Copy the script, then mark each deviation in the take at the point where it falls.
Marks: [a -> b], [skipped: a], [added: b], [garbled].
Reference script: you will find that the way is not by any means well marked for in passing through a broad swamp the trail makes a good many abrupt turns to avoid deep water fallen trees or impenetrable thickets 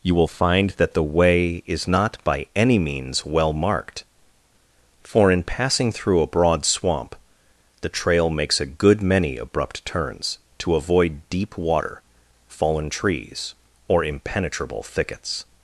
you will find that the way is not by any means well marked for in passing through a broad swamp the trail makes a good many abrupt turns to avoid deep water fallen trees or impenetrable thickets